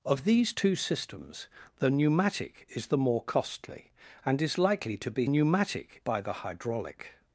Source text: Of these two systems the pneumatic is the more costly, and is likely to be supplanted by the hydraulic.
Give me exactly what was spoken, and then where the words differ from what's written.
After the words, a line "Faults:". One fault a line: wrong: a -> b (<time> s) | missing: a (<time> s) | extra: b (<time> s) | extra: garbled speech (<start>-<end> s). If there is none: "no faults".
Of these two systems the pneumatic is the more costly, and is likely to be pneumatic by the hydraulic.
Faults:
wrong: supplanted -> pneumatic (5.2 s)